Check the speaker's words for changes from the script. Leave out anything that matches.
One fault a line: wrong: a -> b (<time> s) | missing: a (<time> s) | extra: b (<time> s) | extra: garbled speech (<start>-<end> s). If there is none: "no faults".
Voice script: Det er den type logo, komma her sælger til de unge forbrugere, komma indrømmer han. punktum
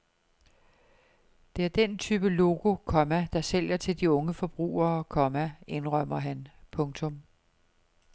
wrong: her -> der (3.3 s)